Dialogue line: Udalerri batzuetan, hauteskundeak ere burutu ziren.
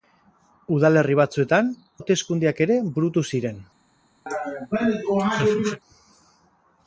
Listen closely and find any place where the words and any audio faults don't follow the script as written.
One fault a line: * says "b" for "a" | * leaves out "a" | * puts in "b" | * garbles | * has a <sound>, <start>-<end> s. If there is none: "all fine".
* has a laugh, 4.3-5.8 s